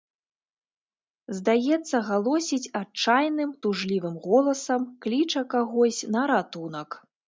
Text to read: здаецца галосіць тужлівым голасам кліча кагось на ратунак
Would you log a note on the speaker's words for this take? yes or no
yes